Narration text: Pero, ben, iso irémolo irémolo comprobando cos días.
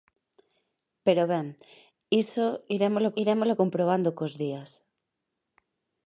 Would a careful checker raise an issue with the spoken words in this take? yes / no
no